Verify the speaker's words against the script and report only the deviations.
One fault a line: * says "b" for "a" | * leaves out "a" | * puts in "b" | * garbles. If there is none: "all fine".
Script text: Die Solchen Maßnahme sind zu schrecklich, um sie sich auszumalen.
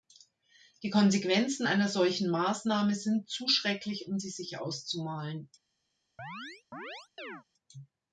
* puts in "Konsequenzen einer"